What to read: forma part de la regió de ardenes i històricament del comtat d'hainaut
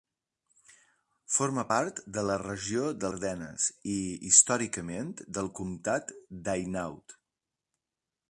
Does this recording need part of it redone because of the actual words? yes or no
no